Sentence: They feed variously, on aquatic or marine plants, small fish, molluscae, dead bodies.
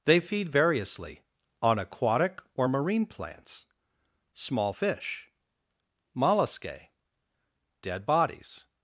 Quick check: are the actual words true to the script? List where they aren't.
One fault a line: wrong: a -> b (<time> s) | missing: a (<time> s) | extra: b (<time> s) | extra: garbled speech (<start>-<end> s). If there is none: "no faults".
no faults